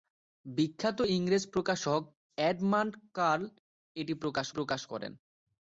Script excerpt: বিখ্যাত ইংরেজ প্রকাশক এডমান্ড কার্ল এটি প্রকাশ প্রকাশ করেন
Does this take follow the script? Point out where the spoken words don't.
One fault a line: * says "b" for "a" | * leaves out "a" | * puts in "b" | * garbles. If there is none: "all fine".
all fine